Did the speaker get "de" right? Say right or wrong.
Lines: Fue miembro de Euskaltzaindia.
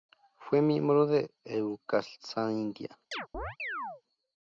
right